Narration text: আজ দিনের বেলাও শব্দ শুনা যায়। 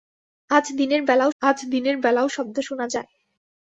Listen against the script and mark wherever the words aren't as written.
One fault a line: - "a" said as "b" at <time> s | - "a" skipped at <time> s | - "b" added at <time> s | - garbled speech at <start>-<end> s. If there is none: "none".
- "আজ দিনের বেলাও" added at 1.4 s